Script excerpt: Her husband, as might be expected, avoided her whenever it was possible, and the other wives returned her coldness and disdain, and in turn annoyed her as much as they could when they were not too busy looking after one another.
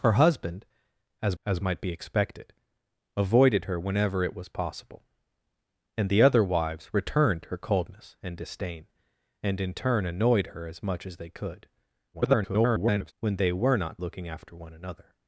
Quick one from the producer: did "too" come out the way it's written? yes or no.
no